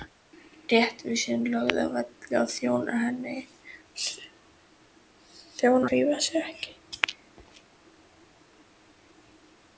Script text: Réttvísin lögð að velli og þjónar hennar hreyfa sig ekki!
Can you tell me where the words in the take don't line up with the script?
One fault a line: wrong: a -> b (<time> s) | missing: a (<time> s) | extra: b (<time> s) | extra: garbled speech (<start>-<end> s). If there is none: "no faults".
missing: hennar (3.0 s)